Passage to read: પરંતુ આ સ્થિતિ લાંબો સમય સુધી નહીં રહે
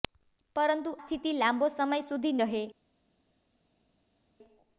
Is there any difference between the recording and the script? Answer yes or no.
yes